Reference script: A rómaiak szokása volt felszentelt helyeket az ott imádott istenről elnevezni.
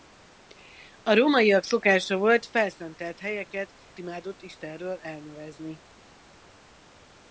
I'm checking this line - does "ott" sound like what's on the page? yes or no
no